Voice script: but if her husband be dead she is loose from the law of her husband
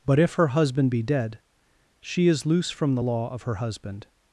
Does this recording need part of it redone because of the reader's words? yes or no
no